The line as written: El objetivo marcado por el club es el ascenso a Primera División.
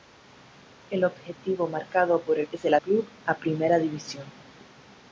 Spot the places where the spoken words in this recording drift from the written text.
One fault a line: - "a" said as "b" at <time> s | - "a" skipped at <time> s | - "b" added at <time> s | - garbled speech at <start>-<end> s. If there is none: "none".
- "club" skipped at 2.5 s
- "ascenso" said as "club" at 2.8 s